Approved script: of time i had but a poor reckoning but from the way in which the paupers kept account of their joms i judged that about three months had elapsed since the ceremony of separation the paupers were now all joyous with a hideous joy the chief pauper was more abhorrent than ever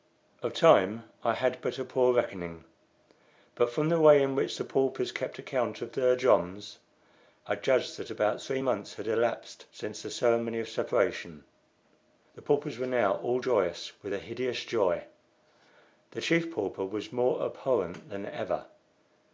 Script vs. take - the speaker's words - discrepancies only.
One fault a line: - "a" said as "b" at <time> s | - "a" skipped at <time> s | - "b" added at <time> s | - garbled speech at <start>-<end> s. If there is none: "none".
none